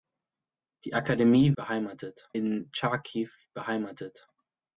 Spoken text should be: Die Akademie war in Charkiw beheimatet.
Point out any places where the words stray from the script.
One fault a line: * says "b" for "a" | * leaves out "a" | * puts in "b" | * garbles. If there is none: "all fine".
* says "beheimatet" for "war"